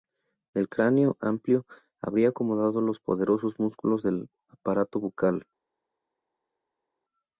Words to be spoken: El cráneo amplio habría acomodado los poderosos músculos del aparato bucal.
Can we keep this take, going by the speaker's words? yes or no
yes